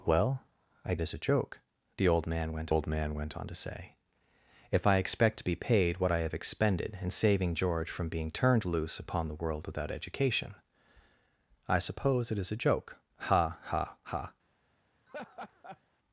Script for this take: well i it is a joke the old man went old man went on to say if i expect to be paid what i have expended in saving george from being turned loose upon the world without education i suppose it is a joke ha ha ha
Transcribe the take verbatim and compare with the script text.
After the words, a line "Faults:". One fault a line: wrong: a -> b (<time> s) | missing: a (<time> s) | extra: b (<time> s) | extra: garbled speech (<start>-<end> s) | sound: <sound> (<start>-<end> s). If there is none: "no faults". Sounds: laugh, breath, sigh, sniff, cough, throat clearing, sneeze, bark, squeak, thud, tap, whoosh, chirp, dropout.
well i it is a joke the old man went old man went on to say if i expect to be paid what i have expended in saving george from being turned loose upon the world without education i suppose it is a joke ha ha ha
Faults:
sound: laugh (15.1-15.8 s)